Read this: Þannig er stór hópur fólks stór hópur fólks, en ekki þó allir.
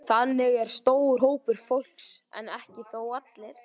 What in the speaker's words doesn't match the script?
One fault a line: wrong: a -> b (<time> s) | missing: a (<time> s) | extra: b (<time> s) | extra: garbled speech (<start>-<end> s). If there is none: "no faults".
missing: stór hópur fólks (2.1 s)